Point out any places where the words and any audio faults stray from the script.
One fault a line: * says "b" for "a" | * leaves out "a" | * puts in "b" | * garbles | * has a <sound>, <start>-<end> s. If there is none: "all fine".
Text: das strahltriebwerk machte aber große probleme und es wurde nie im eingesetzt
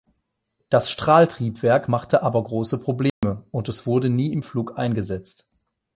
* has a dropout, 3.1-3.2 s
* puts in "flug"